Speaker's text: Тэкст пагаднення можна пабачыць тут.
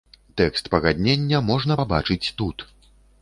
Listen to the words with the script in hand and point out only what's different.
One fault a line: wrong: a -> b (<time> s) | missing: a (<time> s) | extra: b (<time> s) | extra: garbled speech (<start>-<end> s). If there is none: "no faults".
no faults